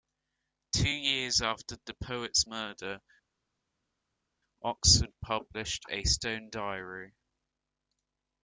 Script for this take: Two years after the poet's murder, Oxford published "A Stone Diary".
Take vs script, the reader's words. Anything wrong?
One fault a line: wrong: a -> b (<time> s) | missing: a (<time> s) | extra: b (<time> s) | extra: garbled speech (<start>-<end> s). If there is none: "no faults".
no faults